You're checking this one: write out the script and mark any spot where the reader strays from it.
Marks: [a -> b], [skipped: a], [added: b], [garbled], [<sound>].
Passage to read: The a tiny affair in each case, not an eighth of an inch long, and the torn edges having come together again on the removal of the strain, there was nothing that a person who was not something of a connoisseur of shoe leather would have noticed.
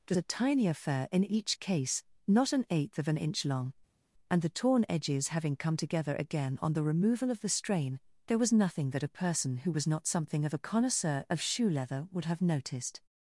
The a tiny affair in each case, not an eighth of an inch long, and the torn edges having come together again on the removal of the strain, there was nothing that a person who was not something of a connoisseur of shoe leather would have noticed.